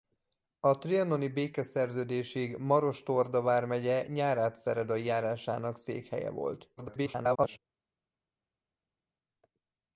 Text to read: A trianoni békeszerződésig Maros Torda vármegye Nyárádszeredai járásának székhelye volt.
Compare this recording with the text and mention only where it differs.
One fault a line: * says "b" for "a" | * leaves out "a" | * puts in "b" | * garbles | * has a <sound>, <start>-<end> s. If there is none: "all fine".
* garbles